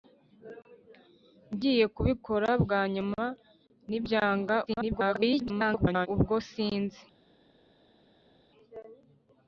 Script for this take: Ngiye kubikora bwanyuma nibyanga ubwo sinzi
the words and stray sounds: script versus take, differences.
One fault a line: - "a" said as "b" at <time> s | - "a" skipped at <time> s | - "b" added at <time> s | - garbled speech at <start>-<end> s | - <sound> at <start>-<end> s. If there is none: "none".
- garbled speech at 4.7-6.1 s